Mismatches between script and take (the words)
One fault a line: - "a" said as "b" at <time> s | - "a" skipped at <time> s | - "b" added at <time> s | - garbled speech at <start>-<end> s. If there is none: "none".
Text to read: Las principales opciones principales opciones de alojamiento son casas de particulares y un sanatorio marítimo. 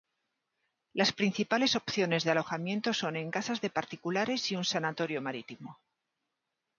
- "principales opciones" skipped at 2.2 s
- "en" added at 3.2 s